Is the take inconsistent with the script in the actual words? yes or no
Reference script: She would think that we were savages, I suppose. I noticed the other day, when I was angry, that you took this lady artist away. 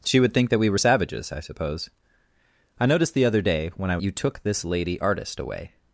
yes